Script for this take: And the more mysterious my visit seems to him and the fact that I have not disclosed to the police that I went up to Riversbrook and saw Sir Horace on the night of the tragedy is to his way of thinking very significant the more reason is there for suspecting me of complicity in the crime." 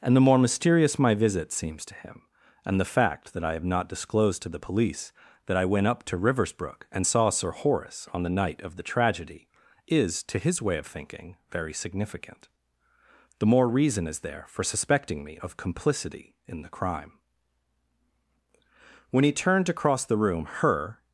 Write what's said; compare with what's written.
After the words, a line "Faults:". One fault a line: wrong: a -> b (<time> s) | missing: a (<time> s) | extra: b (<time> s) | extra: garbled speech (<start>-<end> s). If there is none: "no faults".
And the more mysterious my visit seems to him and the fact that I have not disclosed to the police that I went up to Riversbrook and saw Sir Horace on the night of the tragedy is to his way of thinking very significant the more reason is there for suspecting me of complicity in the crime." When he turned to cross the room her
Faults:
extra: When he turned to cross the room her (19.1 s)